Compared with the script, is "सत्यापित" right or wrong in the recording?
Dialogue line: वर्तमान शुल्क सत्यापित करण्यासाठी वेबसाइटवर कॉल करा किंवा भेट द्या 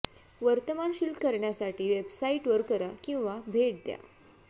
wrong